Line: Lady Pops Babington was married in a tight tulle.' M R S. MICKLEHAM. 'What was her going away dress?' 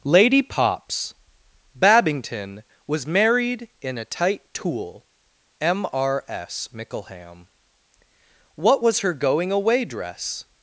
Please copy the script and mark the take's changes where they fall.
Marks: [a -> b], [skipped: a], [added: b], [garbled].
Lady Pops Babington was married in a tight tulle.' M R S. MICKLEHAM. 'What was her going away dress?'